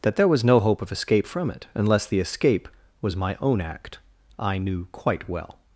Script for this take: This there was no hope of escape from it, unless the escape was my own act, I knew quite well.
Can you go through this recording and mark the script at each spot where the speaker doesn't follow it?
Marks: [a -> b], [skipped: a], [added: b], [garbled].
[This -> That] there was no hope of escape from it, unless the escape was my own act, I knew quite well.